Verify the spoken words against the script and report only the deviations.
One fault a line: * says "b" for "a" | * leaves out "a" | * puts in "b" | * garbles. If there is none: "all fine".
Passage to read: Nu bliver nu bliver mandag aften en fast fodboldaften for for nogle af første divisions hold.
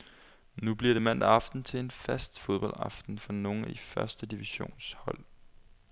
* leaves out "nu bliver"
* puts in "til"
* leaves out "for"